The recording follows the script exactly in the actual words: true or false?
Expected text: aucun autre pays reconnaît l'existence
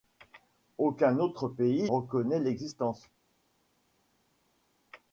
true